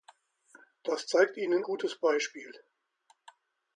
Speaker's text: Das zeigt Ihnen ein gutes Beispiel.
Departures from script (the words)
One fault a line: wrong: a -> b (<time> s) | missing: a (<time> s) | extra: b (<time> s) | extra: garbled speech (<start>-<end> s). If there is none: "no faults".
missing: ein (1.6 s)